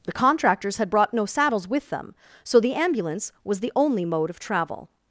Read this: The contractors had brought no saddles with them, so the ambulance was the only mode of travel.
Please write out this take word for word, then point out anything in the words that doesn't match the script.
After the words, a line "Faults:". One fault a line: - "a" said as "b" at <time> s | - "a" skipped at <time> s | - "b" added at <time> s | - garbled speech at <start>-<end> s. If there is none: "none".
The contractors had brought no saddles with them, so the ambulance was the only mode of travel.
Faults:
none